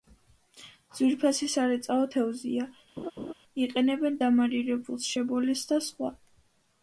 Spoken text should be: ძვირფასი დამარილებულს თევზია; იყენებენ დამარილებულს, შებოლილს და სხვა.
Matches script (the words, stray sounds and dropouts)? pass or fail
fail